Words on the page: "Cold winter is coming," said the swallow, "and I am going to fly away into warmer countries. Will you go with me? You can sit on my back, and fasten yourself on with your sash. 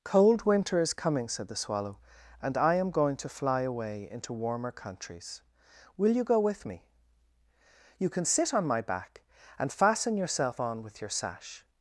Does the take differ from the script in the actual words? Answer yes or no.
no